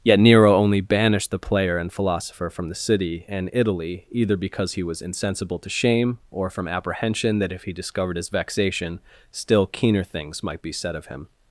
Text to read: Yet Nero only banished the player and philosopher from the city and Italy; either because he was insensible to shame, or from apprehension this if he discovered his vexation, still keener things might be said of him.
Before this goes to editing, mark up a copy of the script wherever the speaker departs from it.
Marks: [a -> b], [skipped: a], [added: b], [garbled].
Yet Nero only banished the player and philosopher from the city and Italy; either because he was insensible to shame, or from apprehension [this -> that] if he discovered his vexation, still keener things might be said of him.